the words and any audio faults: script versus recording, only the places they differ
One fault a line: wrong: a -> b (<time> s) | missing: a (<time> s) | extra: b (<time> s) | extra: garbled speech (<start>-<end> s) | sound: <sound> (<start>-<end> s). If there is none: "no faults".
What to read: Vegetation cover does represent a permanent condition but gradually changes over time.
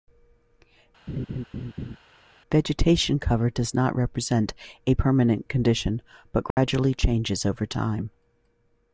sound: laugh (1.1-2.0 s)
extra: not (3.7 s)
sound: dropout (6.5-6.6 s)